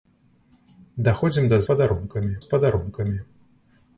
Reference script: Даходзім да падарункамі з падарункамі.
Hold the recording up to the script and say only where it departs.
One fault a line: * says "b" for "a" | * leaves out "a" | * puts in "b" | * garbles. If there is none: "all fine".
all fine